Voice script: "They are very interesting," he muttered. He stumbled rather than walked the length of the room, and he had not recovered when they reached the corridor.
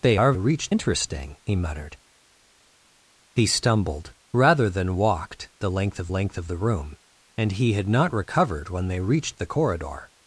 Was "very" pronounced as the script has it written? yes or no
no